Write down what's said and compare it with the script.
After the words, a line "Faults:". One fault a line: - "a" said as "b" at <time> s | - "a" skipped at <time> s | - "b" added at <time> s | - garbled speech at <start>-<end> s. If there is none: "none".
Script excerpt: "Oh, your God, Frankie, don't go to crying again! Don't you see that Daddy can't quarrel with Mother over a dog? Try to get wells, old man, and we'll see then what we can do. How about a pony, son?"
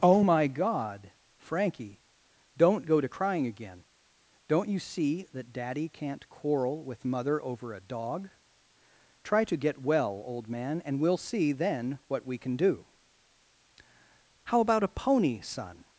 "Oh, my God, Frankie, don't go to crying again! Don't you see that Daddy can't quarrel with Mother over a dog? Try to get well, old man, and we'll see then what we can do. How about a pony, son?"
Faults:
- "your" said as "my" at 0.2 s
- "wells" said as "well" at 9.8 s